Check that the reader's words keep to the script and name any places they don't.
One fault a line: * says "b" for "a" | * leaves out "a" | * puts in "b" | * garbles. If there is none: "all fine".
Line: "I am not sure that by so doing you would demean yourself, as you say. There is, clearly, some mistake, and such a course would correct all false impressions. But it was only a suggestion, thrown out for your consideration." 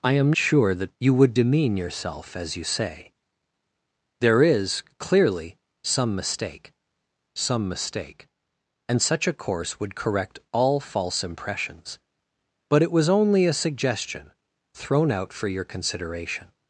* leaves out "not"
* leaves out "by so doing"
* puts in "some mistake"